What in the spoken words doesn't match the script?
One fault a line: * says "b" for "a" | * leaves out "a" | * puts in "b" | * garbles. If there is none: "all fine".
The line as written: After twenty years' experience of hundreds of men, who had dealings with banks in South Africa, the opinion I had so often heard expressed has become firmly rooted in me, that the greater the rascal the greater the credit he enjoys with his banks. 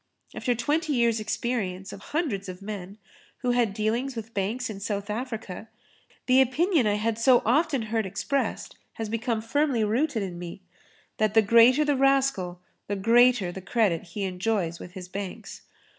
all fine